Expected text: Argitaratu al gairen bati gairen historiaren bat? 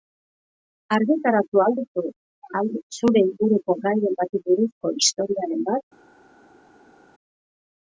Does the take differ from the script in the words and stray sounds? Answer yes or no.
yes